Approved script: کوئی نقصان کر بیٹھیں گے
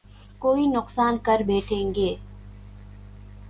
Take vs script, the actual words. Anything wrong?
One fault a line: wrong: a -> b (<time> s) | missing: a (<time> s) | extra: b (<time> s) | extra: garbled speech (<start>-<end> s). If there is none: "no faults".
no faults